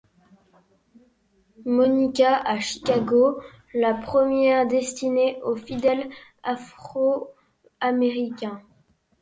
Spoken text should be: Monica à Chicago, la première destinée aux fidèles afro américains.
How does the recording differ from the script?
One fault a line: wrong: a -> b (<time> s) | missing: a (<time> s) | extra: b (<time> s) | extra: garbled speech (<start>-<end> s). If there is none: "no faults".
no faults